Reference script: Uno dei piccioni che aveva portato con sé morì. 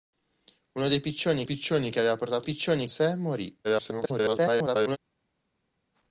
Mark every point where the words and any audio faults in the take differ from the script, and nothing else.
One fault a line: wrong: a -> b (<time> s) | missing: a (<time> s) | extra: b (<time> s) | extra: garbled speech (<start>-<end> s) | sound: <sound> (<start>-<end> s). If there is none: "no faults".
extra: piccioni (1.4 s)
wrong: con -> piccioni (2.4 s)
extra: garbled speech (3.6-5.0 s)